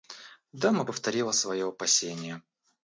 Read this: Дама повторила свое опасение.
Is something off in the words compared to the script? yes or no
no